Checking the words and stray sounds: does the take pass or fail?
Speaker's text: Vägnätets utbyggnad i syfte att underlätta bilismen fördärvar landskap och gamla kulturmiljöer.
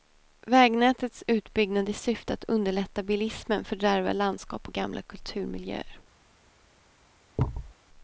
fail